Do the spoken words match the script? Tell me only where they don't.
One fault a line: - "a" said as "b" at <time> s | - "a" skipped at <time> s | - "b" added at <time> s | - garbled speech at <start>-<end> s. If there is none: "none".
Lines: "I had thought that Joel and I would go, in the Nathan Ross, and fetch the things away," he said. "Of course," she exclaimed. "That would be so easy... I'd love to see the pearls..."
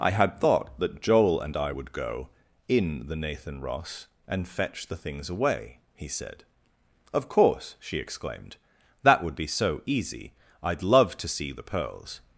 none